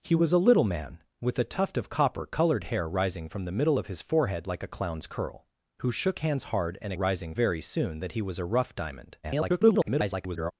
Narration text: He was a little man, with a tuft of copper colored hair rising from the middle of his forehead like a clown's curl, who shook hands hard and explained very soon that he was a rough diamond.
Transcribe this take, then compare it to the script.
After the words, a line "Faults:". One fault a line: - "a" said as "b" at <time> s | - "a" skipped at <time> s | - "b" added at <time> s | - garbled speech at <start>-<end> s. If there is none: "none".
He was a little man, with a tuft of copper colored hair rising from the middle of his forehead like a clown's curl, who shook hands hard and rising very soon that he was a rough diamond. [garbled]
Faults:
- "explained" said as "rising" at 6.9 s
- garbled speech at 9.2-10.5 s